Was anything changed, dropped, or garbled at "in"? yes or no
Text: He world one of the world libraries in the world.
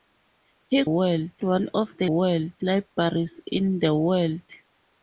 no